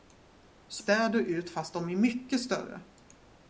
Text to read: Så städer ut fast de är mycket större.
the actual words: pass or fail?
pass